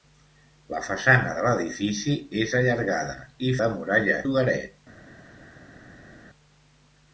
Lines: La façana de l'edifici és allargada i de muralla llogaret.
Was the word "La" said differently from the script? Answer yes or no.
no